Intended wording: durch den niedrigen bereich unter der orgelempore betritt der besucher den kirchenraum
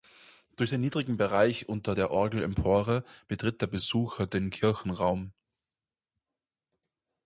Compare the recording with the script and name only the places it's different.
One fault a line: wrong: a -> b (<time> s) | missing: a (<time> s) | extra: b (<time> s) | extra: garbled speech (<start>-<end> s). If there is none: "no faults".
no faults